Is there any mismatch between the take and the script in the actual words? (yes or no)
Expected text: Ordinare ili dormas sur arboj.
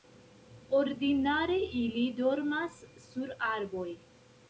no